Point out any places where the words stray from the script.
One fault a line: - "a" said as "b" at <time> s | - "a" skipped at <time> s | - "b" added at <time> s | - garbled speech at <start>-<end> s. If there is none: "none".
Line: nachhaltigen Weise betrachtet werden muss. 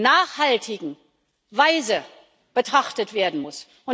none